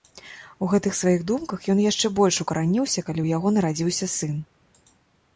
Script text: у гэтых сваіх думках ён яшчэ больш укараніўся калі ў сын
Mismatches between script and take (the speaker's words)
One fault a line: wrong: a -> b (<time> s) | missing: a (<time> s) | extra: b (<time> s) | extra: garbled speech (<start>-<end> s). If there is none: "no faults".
extra: яго нарадзіўся (3.4 s)